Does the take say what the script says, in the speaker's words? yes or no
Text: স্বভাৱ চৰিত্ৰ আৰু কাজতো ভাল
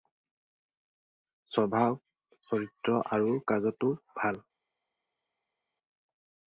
yes